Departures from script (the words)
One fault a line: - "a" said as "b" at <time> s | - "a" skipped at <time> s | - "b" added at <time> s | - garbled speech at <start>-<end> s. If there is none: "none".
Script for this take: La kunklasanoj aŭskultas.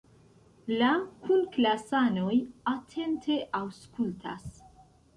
- "atente" added at 2.7 s